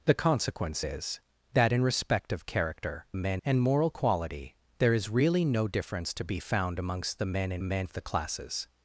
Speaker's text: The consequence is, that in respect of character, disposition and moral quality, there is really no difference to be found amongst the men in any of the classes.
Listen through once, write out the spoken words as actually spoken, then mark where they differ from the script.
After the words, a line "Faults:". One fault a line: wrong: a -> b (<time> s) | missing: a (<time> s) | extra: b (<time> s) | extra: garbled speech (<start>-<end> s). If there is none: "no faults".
The consequence is, that in respect of character, men and moral quality, there is really no difference to be found amongst the men in men of the classes.
Faults:
wrong: disposition -> men (3.1 s)
wrong: any -> men (7.6 s)